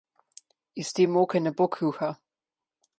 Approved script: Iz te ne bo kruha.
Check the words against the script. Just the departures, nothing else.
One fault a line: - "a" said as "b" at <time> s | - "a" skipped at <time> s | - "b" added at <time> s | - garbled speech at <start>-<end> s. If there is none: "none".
- "moke" added at 1.2 s